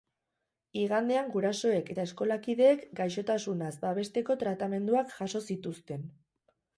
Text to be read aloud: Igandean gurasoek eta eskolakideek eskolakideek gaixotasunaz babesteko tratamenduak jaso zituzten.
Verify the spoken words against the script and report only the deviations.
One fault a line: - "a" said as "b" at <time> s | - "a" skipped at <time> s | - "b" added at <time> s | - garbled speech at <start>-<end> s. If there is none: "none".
- "eskolakideek" skipped at 2.8 s